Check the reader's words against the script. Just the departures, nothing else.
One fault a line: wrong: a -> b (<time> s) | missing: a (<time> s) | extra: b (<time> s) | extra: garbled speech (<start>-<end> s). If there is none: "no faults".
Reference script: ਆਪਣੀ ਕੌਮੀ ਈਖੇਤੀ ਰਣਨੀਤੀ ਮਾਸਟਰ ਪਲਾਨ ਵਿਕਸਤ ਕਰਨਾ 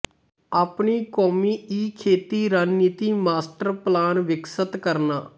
no faults